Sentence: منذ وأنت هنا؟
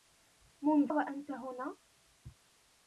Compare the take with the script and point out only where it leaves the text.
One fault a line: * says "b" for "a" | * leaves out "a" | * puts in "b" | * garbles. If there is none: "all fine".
all fine